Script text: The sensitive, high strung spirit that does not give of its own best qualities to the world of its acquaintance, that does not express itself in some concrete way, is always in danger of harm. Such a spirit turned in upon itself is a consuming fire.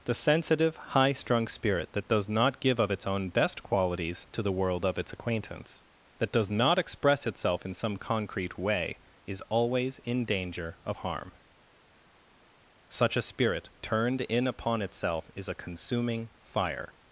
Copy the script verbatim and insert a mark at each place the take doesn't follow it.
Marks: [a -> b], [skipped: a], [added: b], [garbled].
The sensitive, high strung spirit that does not give of its own best qualities to the world of its acquaintance, that does not express itself in some concrete way, is always in danger of harm. Such a spirit turned in upon itself is a consuming fire.